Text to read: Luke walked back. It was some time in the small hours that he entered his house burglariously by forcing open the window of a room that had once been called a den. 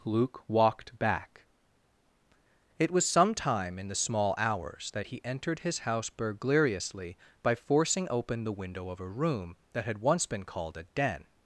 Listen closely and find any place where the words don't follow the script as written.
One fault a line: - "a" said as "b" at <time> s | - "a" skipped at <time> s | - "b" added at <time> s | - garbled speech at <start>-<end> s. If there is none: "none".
none